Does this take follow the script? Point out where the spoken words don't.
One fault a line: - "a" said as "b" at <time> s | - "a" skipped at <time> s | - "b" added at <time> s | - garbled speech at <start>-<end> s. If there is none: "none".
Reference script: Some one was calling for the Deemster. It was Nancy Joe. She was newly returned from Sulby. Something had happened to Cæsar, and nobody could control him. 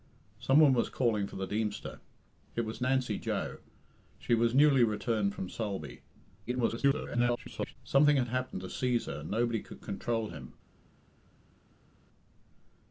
- garbled speech at 6.5-7.8 s